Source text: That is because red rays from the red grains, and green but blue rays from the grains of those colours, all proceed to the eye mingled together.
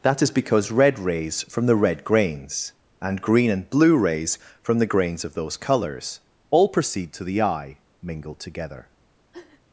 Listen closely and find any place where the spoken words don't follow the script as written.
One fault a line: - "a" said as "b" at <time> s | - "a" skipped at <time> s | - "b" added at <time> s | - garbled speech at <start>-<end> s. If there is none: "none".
- "but" said as "and" at 3.5 s